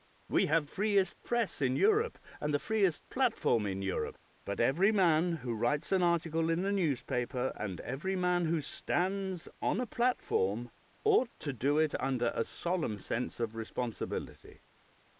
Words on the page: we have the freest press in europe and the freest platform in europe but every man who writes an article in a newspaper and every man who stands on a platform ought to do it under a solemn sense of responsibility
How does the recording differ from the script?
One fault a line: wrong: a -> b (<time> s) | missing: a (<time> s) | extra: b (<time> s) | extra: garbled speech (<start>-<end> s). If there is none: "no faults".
missing: the (0.7 s)